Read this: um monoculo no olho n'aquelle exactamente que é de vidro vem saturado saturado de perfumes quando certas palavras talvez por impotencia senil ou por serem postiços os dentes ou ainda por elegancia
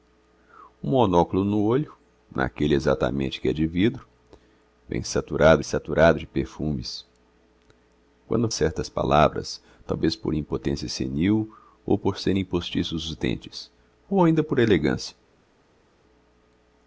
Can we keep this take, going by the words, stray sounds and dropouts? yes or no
yes